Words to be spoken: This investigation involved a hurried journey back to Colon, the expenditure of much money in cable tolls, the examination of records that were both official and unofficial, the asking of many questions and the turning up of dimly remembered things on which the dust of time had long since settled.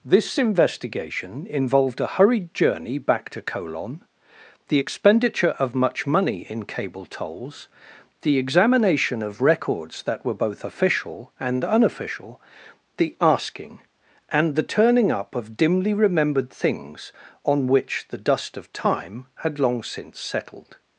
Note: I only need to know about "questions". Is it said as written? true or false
false